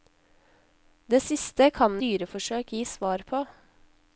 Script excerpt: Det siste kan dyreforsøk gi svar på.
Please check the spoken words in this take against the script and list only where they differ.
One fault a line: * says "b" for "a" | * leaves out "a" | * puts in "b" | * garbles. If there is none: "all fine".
all fine